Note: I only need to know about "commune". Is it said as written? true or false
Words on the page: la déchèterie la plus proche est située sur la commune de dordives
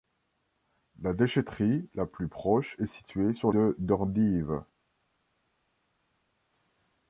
false